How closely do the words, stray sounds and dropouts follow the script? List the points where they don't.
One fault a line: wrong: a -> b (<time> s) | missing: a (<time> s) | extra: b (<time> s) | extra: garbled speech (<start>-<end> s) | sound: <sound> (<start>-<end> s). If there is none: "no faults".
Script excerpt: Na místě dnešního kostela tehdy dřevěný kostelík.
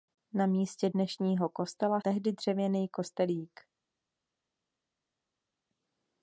no faults